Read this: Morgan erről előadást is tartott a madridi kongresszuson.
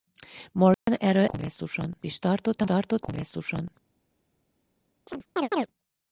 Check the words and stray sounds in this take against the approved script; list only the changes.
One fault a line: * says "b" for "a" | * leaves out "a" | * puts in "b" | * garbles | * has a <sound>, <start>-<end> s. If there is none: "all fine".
* has a dropout, 0.7-0.9 s
* says "kongresszuson" for "előadást"
* says "tartott" for "madridi"
* has a chirp, 5.1-5.7 s